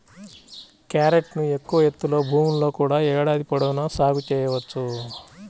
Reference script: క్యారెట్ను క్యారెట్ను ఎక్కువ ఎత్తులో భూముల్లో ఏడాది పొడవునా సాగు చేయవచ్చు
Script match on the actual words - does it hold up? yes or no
no